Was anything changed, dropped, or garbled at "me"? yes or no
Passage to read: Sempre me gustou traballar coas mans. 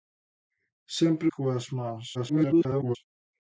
yes